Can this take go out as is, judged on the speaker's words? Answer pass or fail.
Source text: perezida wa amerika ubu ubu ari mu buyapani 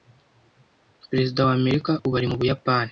fail